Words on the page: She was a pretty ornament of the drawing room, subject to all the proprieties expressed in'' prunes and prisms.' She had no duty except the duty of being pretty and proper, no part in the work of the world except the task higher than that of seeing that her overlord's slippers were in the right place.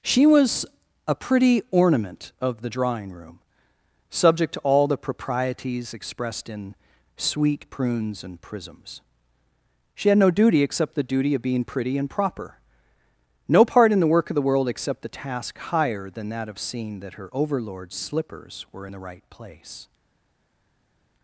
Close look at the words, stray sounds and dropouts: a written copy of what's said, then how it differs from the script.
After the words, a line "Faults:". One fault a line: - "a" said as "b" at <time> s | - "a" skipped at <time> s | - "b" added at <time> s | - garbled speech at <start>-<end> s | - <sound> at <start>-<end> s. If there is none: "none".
She was a pretty ornament of the drawing room, subject to all the proprieties expressed in'' sweet prunes and prisms.' She had no duty except the duty of being pretty and proper, no part in the work of the world except the task higher than that of seeing that her overlord's slippers were in the right place.
Faults:
- "sweet" added at 7.2 s